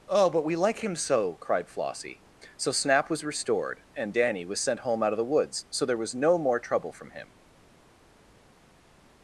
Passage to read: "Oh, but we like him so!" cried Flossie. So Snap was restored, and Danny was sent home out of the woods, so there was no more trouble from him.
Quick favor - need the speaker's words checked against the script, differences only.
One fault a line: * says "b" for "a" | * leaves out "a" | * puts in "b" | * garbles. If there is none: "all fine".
all fine